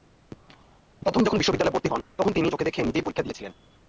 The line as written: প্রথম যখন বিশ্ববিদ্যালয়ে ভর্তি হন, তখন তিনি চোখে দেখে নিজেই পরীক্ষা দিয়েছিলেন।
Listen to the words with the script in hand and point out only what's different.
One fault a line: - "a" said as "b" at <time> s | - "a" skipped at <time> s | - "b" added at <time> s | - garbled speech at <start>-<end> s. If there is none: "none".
none